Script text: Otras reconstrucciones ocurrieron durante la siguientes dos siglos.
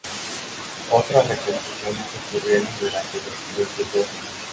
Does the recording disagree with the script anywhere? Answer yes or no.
yes